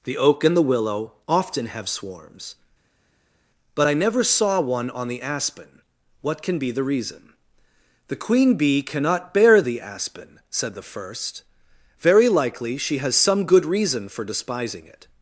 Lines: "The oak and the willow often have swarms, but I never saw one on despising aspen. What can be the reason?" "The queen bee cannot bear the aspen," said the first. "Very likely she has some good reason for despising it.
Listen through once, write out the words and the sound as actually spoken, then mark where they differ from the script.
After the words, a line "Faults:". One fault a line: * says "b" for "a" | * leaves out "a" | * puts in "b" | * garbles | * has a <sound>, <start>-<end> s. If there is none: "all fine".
"The oak and the willow often have swarms, but I never saw one on the aspen. What can be the reason?" "The queen bee cannot bear the aspen," said the first. "Very likely she has some good reason for despising it.
Faults:
* says "the" for "despising"